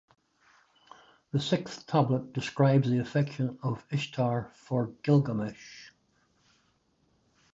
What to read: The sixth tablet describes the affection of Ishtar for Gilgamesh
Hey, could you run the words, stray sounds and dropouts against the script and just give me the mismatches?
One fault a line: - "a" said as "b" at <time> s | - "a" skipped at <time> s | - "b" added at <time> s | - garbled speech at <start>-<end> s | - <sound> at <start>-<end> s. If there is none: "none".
none